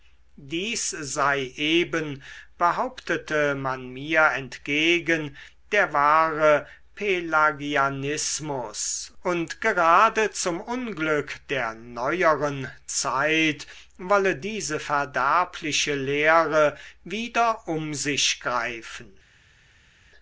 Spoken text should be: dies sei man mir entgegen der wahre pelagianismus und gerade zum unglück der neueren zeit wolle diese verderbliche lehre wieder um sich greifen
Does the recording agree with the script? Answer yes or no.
no